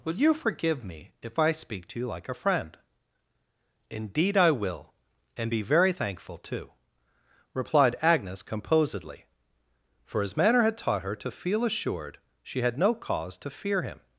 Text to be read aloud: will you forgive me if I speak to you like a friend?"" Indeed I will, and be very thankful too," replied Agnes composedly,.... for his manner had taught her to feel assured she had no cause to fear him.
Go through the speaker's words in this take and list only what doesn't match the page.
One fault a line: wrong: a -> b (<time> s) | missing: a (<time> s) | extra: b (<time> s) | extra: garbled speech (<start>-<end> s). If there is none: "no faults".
no faults